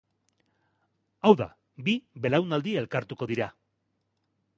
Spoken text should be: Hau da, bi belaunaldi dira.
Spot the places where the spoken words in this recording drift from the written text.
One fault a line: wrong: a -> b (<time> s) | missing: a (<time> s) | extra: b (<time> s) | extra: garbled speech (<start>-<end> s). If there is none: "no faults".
extra: elkartuko (2.8 s)